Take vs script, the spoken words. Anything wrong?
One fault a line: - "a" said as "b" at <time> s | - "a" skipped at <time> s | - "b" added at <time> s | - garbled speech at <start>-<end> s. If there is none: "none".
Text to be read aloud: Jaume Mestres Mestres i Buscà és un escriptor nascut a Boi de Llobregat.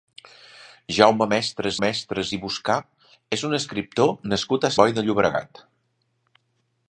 none